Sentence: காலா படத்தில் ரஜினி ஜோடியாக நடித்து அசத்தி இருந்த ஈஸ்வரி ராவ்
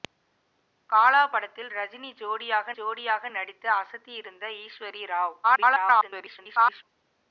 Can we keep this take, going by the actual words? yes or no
no